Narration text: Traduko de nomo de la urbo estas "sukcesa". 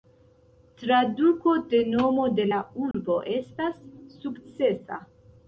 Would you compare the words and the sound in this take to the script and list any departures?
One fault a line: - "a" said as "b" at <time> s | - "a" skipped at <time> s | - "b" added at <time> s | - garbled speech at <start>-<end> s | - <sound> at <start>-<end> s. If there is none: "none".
- dropout at 2.9-2.9 s